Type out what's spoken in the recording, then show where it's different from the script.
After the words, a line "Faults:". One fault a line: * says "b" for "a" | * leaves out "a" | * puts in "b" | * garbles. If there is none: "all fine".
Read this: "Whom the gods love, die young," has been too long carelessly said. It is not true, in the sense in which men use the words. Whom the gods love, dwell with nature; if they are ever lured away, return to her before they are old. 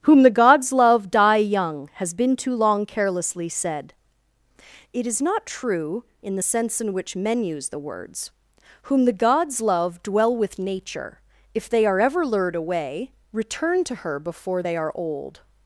"Whom the gods love, die young," has been too long carelessly said. It is not true, in the sense in which men use the words. Whom the gods love, dwell with nature; if they are ever lured away, return to her before they are old.
Faults:
all fine